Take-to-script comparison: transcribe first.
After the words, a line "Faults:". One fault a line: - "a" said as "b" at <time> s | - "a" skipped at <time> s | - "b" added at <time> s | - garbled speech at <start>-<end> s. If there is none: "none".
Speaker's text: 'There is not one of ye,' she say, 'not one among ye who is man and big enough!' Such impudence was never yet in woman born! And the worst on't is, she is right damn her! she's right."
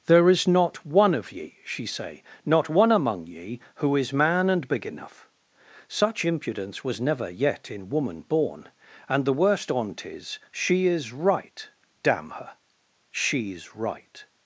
'There is not one of ye,' she say, 'not one among ye who is man and big enough!' Such impudence was never yet in woman born! And the worst on't is, she is right damn her! she's right."
Faults:
none